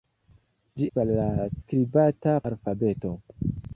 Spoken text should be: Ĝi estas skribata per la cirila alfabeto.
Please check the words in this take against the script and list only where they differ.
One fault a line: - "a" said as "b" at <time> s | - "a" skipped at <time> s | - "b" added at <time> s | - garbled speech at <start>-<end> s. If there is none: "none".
- "estas skribata" skipped at 0.9 s
- "cirila" said as "skribata" at 1.6 s